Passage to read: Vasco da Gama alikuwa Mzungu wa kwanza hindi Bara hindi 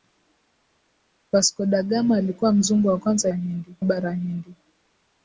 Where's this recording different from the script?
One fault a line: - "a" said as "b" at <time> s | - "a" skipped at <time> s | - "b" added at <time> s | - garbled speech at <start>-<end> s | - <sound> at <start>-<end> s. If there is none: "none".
none